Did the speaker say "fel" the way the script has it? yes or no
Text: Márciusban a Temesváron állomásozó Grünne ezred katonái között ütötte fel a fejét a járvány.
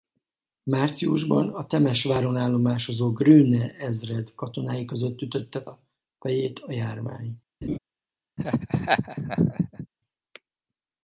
no